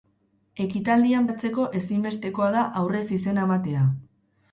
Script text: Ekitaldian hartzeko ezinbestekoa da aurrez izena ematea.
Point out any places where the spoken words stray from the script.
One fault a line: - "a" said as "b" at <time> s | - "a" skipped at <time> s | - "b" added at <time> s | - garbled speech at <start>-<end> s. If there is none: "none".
none